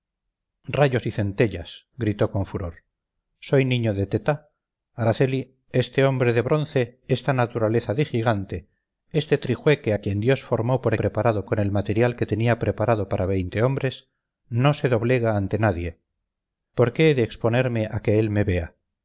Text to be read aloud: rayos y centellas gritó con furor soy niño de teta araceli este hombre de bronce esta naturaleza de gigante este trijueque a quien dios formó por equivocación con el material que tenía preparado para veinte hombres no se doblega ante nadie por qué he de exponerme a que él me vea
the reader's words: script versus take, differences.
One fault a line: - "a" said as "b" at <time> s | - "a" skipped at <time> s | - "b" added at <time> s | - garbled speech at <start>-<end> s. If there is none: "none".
- "equivocación" said as "preparado" at 11.0 s